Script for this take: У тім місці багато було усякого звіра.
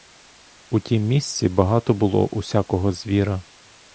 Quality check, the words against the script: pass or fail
pass